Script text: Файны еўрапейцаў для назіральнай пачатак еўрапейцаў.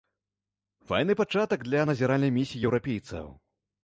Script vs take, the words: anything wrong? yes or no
yes